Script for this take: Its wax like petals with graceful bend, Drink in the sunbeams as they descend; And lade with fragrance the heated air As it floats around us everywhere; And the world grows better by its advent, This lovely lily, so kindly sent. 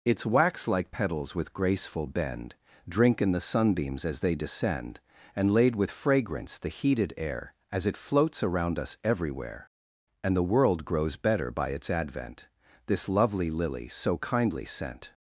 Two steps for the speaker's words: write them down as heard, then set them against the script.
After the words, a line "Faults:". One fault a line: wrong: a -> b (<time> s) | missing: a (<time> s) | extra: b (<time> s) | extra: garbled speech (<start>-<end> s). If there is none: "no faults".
Its wax like petals with graceful bend, Drink in the sunbeams as they descend; And lade with fragrance the heated air As it floats around us everywhere; And the world grows better by its advent, This lovely lily, so kindly sent.
Faults:
no faults